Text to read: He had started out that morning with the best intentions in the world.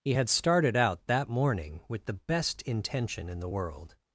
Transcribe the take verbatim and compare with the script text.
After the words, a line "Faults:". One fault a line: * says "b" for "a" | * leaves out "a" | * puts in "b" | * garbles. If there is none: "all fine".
He had started out that morning with the best intention in the world.
Faults:
* says "intention" for "intentions"